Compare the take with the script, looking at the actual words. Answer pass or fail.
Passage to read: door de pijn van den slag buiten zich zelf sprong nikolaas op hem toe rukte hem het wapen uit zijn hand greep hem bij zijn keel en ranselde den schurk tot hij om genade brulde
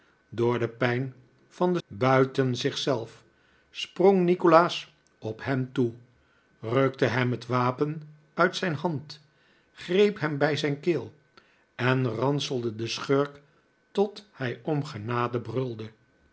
fail